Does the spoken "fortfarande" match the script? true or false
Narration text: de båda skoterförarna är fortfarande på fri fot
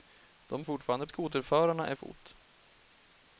false